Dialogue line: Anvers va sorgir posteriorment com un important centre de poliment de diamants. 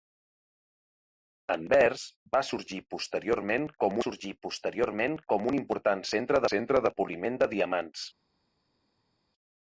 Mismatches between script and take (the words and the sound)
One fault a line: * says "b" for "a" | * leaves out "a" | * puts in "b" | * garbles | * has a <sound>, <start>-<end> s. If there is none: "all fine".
* puts in "sorgir posteriorment com"
* puts in "centre"